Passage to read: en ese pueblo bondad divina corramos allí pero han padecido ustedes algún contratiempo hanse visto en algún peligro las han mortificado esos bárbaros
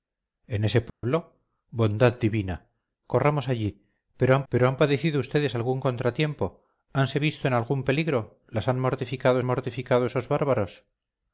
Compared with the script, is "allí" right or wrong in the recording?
right